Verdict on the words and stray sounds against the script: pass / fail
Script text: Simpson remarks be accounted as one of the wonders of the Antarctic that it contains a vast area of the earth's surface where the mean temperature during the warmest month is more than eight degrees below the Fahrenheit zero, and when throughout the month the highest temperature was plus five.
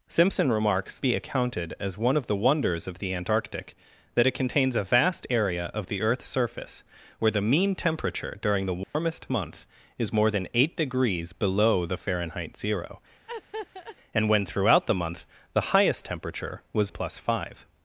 fail